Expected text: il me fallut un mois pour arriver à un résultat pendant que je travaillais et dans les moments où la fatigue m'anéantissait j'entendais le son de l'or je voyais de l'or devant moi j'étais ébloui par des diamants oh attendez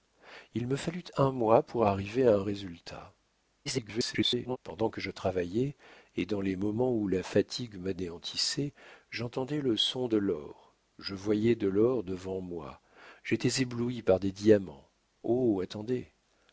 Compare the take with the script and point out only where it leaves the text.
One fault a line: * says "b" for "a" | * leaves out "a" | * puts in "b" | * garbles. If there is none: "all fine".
* garbles